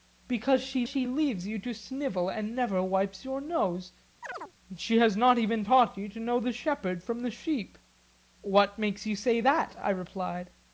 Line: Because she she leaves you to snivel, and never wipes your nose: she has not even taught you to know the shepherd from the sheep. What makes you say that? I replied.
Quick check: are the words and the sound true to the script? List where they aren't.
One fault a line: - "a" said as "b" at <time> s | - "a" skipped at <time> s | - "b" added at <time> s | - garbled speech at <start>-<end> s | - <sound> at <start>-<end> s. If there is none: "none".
- chirp at 4.2-4.5 s